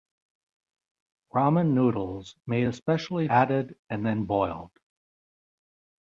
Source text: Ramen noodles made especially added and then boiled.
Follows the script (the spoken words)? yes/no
yes